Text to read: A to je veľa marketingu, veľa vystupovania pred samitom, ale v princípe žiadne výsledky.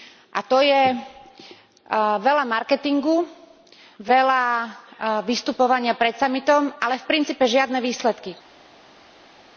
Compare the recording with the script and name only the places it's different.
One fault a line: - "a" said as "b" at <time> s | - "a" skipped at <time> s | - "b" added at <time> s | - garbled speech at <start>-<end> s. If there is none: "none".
none